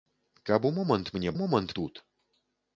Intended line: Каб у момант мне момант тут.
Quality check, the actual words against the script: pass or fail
pass